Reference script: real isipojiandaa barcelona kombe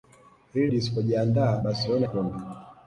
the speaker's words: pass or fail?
pass